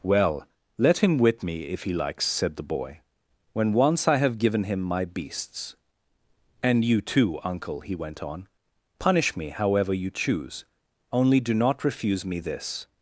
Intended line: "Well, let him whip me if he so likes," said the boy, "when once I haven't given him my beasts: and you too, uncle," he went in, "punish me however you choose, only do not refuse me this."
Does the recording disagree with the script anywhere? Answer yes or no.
yes